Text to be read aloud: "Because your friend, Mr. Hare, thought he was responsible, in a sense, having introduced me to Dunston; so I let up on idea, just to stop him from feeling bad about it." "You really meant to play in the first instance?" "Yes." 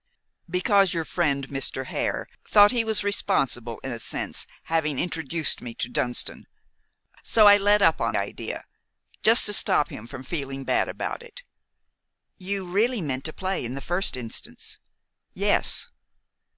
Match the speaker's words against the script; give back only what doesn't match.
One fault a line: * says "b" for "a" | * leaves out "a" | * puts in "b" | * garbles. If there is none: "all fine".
all fine